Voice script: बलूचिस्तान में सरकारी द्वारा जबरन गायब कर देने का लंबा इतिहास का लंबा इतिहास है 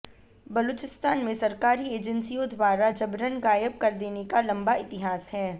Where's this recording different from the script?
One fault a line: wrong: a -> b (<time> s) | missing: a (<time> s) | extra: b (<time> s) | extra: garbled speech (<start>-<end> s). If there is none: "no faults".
extra: एजेंसियों (1.9 s)
missing: का लंबा इतिहास (5.3 s)